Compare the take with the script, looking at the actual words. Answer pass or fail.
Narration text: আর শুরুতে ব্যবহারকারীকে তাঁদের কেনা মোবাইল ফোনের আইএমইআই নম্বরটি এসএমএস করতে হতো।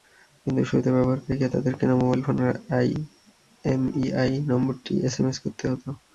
fail